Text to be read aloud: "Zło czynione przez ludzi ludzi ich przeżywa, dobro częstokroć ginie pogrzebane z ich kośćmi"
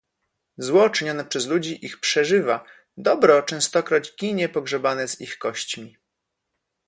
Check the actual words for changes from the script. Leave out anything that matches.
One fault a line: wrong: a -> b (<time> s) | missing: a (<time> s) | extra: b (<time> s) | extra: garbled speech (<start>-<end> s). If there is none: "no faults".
missing: ludzi (1.9 s)